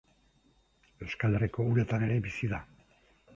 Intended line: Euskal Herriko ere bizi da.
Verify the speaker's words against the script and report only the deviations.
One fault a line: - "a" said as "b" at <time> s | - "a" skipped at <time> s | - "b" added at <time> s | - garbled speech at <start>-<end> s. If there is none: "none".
- "uretan" added at 1.7 s